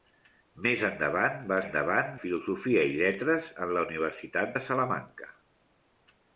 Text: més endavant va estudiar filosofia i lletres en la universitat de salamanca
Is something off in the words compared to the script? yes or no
yes